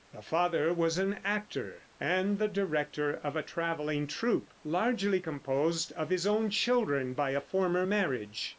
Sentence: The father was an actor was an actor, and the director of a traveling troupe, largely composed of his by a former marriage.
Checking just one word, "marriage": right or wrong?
right